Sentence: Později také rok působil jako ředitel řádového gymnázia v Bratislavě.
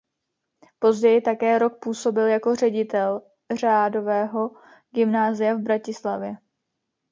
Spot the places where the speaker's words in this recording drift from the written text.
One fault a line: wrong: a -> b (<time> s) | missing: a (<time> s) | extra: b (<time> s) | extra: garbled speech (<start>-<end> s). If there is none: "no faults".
no faults